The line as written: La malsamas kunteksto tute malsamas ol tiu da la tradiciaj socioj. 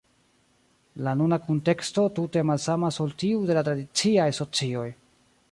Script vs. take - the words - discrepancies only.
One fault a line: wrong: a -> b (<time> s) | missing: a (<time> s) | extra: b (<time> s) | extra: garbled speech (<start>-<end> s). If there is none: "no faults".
wrong: malsamas -> nuna (1.2 s)
wrong: da -> de (3.5 s)